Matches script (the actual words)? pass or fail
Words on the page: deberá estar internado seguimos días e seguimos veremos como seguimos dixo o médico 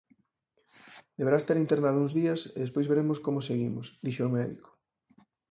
fail